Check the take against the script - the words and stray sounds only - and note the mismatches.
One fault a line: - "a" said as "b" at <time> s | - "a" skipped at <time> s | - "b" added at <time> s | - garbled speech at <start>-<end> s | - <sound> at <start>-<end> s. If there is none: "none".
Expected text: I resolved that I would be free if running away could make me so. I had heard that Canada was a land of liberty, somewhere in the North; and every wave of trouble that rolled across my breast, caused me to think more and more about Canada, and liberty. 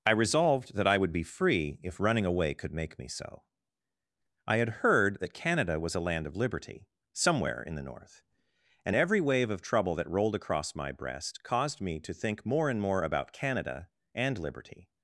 none